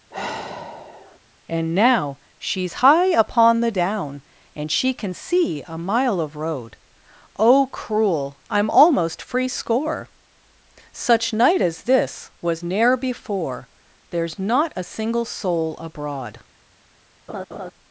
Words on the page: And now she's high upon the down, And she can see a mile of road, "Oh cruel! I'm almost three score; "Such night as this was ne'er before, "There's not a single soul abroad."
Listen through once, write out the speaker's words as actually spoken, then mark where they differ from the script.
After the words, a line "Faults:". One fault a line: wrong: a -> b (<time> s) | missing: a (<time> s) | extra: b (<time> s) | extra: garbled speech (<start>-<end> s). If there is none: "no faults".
And now she's high upon the down, And she can see a mile of road, "Oh cruel! I'm almost free score; "Such night as this was ne'er before, "There's not a single soul abroad."
Faults:
wrong: three -> free (9.2 s)